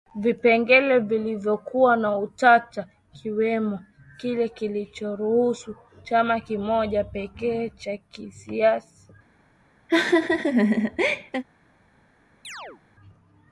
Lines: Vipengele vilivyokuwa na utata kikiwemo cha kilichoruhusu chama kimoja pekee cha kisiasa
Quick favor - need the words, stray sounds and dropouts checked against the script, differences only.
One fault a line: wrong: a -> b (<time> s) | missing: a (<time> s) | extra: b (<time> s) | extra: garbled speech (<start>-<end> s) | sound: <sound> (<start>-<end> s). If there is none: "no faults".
wrong: cha -> kile (4.2 s)
sound: laugh (9.9-11.4 s)
sound: chirp (12.4-12.8 s)